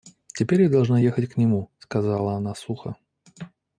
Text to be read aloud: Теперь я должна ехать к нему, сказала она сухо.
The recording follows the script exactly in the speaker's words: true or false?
true